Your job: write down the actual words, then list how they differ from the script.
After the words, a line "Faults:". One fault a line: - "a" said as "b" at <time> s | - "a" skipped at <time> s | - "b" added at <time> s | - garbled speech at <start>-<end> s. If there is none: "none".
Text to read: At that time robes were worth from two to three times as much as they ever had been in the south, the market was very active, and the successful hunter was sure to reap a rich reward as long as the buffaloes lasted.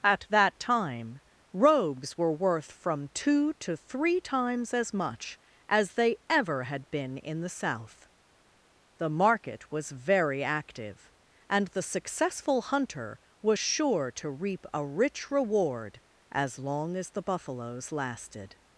At that time robes were worth from two to three times as much as they ever had been in the south, the market was very active, and the successful hunter was sure to reap a rich reward as long as the buffaloes lasted.
Faults:
none